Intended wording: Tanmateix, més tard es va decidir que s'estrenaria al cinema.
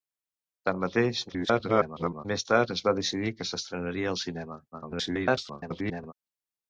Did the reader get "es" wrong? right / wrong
right